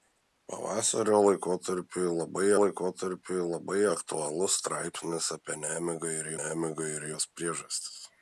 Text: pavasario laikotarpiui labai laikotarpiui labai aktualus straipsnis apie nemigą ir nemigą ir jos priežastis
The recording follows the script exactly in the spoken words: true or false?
true